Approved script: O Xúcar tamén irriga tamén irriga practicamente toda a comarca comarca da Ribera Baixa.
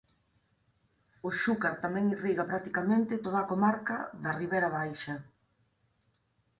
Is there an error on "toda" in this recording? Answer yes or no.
no